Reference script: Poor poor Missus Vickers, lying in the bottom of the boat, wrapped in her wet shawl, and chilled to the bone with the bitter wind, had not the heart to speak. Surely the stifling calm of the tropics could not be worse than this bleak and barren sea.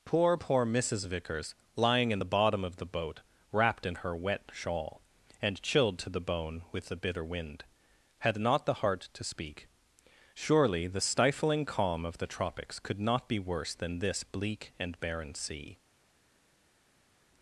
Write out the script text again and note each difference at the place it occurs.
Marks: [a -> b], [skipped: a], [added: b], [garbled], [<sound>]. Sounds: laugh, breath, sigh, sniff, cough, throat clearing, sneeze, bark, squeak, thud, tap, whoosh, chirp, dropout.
Poor poor Missus Vickers, lying in the bottom of the boat, wrapped in her wet shawl, and chilled to the bone with the bitter wind, had not the heart to speak. Surely the stifling calm of the tropics could not be worse than this bleak and barren sea.